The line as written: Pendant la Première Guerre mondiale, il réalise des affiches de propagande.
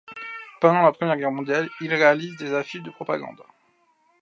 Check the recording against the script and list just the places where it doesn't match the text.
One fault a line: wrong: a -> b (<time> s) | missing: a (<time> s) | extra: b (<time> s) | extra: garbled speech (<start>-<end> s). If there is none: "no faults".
no faults